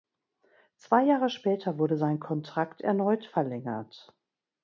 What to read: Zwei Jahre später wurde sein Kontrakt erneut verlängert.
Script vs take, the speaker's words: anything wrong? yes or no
no